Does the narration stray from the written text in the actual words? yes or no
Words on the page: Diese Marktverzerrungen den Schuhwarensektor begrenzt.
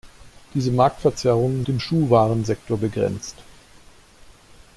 no